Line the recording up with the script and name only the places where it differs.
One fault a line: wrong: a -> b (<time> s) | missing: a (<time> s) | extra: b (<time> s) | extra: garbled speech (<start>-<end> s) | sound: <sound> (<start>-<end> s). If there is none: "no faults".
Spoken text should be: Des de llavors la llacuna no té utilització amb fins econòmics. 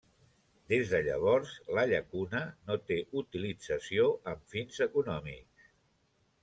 no faults